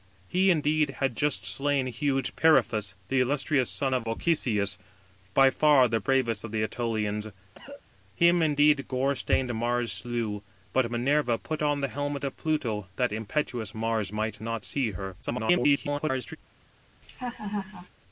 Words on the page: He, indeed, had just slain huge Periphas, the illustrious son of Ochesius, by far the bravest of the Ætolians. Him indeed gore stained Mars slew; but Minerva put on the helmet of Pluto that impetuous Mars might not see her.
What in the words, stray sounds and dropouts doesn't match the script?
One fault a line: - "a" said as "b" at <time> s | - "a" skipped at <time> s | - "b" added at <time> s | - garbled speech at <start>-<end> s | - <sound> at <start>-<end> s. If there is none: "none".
- cough at 7.6-7.8 s
- garbled speech at 15.2-16.4 s
- laugh at 17.0-17.9 s